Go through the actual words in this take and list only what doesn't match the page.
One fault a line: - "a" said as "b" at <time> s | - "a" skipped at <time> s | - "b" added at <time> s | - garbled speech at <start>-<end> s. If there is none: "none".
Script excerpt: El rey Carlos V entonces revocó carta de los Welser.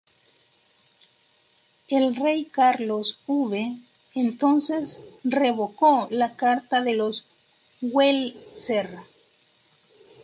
- "la" added at 6.1 s